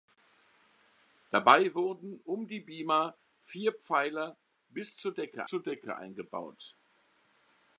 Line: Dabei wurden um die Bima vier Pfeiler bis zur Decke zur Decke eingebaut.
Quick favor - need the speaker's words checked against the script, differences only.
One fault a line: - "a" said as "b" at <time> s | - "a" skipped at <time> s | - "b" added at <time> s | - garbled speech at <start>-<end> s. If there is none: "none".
none